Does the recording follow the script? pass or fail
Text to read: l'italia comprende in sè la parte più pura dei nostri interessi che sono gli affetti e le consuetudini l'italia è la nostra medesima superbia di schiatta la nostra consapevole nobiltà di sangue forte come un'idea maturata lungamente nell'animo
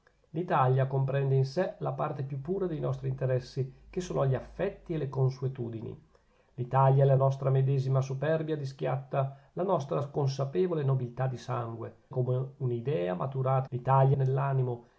fail